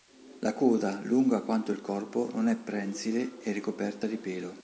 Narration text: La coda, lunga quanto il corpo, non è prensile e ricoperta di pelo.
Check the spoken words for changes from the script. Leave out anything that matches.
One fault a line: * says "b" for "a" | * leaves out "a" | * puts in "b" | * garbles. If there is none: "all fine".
all fine